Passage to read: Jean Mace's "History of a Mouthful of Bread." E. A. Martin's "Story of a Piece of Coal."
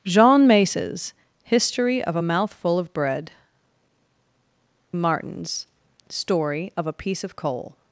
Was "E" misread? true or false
true